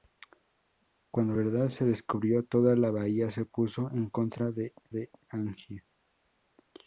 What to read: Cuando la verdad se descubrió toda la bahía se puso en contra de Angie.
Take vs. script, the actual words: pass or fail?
fail